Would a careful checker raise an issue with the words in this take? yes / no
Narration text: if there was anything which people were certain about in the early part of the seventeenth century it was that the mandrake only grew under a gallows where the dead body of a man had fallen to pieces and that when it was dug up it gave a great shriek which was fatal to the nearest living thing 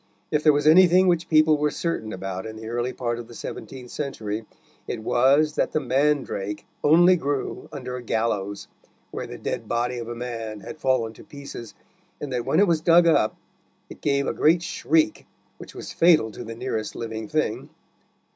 no